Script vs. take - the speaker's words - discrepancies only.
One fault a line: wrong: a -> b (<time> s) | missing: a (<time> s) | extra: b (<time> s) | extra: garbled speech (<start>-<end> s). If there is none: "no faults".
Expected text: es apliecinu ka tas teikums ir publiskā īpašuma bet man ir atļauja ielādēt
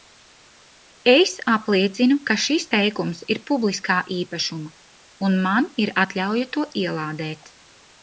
wrong: tas -> šis (2.5 s)
wrong: bet -> un (5.3 s)
extra: to (6.6 s)